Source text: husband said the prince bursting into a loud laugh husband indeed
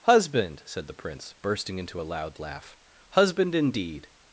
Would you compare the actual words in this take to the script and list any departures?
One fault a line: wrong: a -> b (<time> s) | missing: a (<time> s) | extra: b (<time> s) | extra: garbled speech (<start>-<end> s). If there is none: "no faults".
no faults